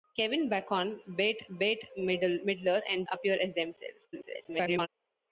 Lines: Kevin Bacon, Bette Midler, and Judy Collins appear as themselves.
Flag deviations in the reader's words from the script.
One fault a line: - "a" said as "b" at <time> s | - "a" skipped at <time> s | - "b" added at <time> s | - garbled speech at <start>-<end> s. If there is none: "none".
- "Bette" added at 1.5 s
- "Judy Collins" skipped at 3.1 s
- garbled speech at 4.1-4.9 s